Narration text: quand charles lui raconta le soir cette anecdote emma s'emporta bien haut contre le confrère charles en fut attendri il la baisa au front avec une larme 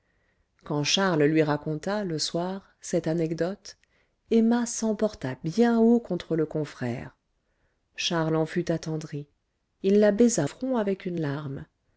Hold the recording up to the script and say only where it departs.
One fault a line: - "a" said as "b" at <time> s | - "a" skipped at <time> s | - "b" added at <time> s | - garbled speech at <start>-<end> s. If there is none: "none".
- "au" skipped at 10.5 s